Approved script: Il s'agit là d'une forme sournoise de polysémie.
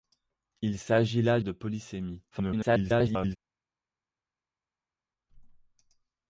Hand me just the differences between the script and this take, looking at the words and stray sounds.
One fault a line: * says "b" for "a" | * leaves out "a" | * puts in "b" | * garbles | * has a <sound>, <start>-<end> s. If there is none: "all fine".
* leaves out "d'une forme sournoise"
* garbles